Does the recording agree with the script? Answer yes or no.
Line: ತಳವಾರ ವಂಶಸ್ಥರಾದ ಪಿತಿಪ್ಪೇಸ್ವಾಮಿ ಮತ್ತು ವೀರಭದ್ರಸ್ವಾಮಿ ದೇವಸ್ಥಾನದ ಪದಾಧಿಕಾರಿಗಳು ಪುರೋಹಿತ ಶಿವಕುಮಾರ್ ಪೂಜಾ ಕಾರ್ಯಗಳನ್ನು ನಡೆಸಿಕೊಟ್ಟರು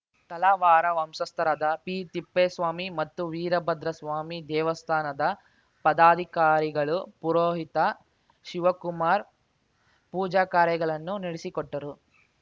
yes